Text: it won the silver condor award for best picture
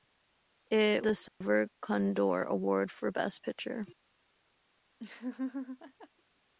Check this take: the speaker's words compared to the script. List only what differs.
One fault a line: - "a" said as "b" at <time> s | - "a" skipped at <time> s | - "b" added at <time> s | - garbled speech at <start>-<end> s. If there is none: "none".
- "won" skipped at 1.1 s